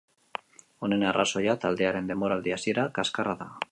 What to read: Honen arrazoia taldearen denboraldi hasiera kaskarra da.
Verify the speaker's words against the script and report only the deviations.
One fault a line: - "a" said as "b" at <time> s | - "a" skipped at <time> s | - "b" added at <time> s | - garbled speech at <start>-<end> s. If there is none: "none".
none